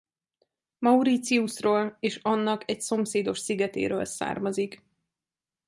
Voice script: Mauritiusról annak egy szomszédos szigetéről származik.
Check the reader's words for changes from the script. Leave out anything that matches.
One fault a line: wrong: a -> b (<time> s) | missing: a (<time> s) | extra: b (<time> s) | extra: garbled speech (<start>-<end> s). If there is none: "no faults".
extra: és (2.0 s)